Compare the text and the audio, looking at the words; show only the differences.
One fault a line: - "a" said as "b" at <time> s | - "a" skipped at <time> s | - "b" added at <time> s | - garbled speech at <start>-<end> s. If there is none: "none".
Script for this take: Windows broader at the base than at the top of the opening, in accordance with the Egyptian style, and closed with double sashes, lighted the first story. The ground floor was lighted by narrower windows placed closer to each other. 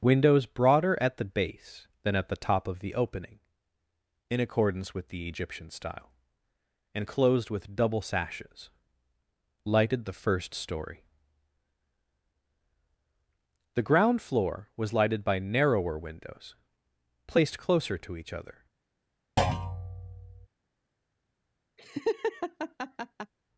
none